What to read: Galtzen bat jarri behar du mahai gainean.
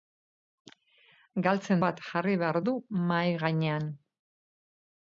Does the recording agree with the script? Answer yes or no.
yes